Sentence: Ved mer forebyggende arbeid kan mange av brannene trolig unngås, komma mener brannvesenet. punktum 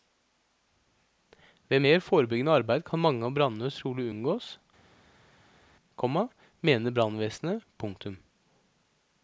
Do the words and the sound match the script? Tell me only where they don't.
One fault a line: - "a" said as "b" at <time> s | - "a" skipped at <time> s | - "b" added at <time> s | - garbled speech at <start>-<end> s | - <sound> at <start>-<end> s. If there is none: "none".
none